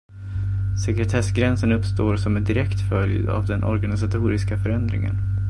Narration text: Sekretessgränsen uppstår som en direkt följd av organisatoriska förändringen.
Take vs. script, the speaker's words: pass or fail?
fail